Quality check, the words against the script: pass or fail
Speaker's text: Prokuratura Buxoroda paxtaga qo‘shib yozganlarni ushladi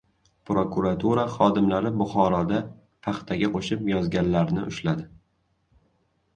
fail